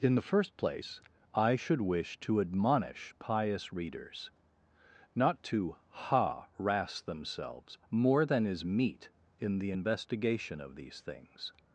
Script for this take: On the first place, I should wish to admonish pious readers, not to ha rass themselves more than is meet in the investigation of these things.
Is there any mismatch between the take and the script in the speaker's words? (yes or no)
yes